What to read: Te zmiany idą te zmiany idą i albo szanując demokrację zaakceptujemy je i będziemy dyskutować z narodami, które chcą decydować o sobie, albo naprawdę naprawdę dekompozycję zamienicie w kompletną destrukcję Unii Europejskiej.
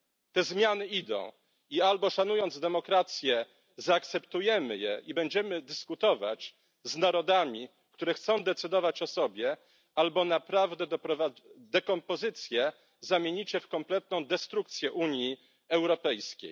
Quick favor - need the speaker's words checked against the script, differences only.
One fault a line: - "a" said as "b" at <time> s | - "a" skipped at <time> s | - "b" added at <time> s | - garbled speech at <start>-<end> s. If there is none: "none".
- "te zmiany idą" skipped at 1.3 s
- "naprawdę" skipped at 10.9 s